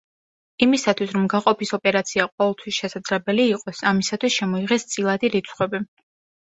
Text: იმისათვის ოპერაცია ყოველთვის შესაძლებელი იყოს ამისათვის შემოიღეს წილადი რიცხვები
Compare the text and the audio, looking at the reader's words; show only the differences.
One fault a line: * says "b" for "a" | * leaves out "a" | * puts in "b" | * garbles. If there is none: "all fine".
* puts in "რომ გაყოფის"